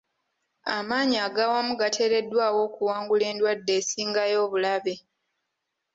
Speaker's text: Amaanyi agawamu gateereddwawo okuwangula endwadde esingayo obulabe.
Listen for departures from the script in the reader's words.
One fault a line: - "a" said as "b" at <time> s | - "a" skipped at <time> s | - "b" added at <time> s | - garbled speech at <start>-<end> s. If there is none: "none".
none